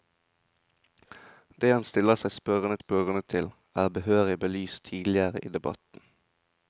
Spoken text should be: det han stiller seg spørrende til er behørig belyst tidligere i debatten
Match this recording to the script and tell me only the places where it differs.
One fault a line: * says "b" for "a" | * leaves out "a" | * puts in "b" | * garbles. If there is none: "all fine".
* puts in "spørrende"